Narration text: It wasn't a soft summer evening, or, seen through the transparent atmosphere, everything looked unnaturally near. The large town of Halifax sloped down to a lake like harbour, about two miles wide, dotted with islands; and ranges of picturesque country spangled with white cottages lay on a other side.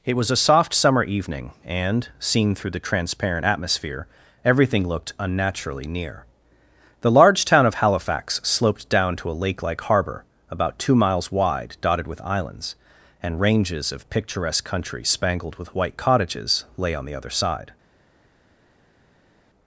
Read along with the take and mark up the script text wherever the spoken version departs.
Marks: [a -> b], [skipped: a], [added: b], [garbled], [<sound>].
It [wasn't -> was] a soft summer evening, [or, -> and] seen through the transparent atmosphere, everything looked unnaturally near. The large town of Halifax sloped down to a lake like harbour, about two miles wide, dotted with islands; and ranges of picturesque country spangled with white cottages lay on [a -> the] other side.